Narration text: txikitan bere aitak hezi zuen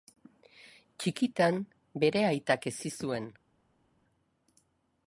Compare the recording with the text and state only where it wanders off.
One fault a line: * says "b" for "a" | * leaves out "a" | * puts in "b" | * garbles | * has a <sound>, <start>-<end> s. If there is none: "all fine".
all fine